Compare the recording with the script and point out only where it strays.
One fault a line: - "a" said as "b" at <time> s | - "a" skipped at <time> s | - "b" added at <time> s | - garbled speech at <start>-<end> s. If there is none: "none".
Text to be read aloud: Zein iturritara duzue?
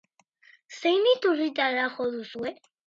- "jo" added at 2.0 s